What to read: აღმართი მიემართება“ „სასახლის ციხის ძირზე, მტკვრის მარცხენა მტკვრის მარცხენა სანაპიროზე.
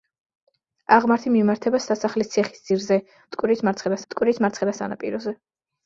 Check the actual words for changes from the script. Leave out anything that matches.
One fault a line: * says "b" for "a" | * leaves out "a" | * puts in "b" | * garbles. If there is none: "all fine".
all fine